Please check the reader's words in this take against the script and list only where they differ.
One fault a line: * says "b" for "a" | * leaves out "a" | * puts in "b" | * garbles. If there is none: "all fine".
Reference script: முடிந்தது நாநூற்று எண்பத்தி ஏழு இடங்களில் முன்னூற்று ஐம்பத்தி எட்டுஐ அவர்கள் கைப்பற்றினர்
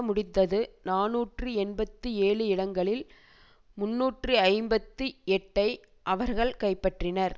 all fine